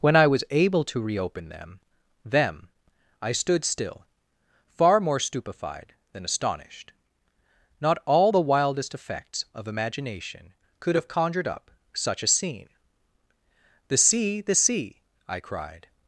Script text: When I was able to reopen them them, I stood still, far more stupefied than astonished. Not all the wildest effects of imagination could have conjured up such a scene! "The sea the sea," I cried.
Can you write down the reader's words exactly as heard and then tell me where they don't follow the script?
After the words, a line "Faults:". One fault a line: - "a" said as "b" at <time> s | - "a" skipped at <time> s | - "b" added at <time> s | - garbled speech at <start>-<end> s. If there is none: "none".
When I was able to reopen them them, I stood still, far more stupefied than astonished. Not all the wildest effects of imagination could have conjured up such a scene! "The sea the sea," I cried.
Faults:
none